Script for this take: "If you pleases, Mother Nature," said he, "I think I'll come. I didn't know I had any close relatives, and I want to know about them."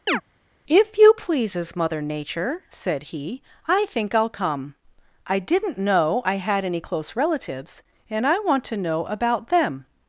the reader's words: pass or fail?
pass